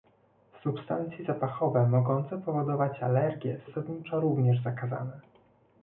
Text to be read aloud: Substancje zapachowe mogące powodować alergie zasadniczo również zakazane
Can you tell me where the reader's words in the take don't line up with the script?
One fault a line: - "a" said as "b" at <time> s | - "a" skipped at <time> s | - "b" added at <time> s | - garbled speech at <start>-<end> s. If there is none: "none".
none